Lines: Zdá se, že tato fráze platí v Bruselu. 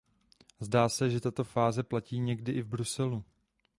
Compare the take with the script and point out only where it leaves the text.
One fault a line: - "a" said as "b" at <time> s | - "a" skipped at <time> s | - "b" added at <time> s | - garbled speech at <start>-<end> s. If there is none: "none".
- "někdy i" added at 2.2 s